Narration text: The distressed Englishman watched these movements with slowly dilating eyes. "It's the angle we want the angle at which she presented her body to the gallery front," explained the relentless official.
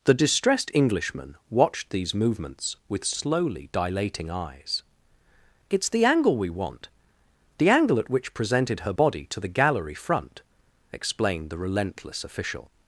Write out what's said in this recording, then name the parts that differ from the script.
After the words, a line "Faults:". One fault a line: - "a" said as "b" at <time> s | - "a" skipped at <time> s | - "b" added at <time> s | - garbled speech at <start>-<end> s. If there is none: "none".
The distressed Englishman watched these movements with slowly dilating eyes. "It's the angle we want the angle at which presented her body to the gallery front," explained the relentless official.
Faults:
- "she" skipped at 8.3 s